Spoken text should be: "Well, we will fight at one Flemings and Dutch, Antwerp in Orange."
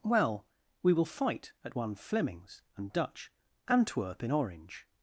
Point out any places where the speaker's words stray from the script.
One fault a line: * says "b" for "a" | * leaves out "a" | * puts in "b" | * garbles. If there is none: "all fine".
all fine